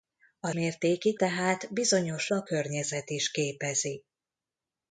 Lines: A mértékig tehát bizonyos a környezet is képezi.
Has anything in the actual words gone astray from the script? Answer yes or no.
no